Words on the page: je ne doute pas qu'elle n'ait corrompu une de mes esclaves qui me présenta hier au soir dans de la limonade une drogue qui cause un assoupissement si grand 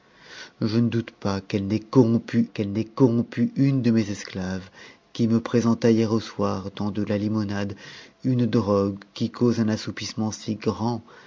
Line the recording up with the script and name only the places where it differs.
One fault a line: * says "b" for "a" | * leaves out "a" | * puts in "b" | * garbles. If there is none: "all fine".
* puts in "qu'elle n'ait corrompu"